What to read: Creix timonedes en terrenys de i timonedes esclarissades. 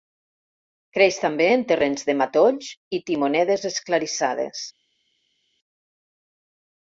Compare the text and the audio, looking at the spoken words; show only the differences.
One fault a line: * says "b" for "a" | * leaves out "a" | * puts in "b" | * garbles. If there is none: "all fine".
* says "també" for "timonedes"
* puts in "matolls"